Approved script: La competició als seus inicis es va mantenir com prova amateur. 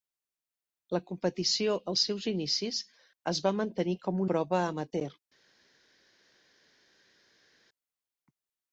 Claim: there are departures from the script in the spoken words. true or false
false